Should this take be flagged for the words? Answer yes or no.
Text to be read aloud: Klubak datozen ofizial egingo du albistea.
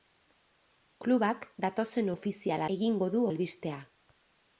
no